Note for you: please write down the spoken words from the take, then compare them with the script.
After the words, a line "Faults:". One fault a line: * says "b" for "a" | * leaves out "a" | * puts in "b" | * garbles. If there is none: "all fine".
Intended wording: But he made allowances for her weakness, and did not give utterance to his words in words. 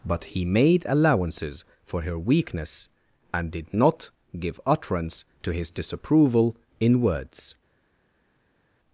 But he made allowances for her weakness, and did not give utterance to his disapproval in words.
Faults:
* says "disapproval" for "words"